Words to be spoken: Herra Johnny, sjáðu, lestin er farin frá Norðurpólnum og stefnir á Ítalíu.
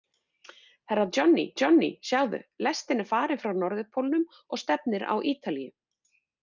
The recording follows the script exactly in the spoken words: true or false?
false